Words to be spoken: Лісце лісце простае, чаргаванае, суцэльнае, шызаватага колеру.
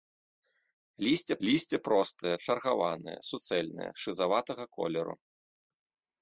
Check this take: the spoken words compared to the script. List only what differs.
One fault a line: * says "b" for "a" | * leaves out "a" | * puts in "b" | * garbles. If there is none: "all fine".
all fine